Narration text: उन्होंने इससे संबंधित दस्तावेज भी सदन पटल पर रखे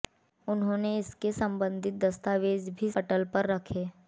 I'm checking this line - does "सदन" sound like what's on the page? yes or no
no